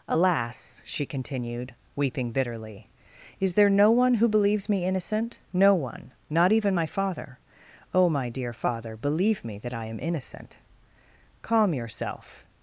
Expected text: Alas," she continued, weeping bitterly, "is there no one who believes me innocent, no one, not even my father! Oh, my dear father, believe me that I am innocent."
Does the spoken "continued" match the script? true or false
true